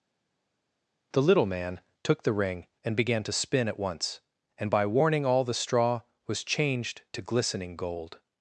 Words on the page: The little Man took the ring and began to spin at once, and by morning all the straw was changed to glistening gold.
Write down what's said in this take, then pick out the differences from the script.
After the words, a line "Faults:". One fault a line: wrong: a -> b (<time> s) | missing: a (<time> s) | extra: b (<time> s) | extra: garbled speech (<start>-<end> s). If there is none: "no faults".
The little Man took the ring and began to spin at once, and by warning all the straw was changed to glistening gold.
Faults:
wrong: morning -> warning (4.9 s)